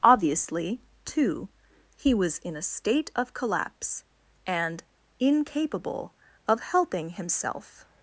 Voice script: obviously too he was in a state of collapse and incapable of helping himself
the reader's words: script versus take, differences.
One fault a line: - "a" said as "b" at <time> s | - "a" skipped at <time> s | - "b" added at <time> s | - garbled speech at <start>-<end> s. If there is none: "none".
none